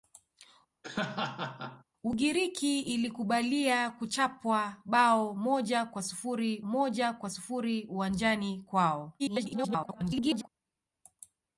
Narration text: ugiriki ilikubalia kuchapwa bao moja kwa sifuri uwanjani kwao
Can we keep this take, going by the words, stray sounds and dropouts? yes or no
no